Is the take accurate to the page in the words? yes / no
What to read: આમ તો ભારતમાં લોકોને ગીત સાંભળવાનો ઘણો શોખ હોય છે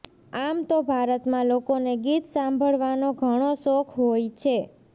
yes